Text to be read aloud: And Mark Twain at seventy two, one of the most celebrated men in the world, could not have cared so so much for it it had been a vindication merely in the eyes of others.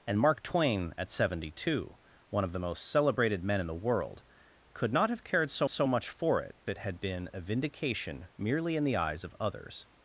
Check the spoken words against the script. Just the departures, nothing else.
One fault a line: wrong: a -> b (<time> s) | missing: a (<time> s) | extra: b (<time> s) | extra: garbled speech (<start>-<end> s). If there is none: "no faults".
no faults